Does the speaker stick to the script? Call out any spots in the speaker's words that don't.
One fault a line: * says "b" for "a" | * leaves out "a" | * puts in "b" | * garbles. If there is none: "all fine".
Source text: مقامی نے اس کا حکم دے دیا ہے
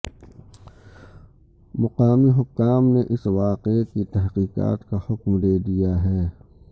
* puts in "حکام"
* puts in "واقعے کی تحقیقات"